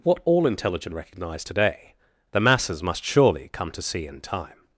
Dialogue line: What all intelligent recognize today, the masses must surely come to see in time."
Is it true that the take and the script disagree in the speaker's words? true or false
false